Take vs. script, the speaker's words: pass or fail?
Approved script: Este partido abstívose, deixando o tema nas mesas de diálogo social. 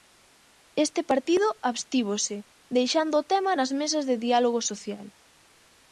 pass